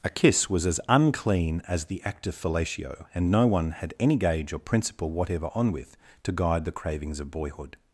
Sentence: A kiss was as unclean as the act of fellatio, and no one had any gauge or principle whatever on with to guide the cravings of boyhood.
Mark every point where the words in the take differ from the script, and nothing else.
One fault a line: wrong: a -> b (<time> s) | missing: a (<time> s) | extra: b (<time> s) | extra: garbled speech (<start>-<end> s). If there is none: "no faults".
no faults